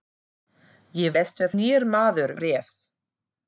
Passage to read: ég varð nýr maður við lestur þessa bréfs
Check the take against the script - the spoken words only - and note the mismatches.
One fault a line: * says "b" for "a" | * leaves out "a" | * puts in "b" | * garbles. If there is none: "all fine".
* says "lestur" for "varð"
* leaves out "við lestur þessa"